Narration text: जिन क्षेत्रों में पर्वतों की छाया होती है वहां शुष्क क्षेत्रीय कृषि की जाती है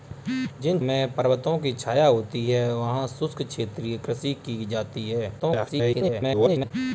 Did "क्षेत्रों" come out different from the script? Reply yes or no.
yes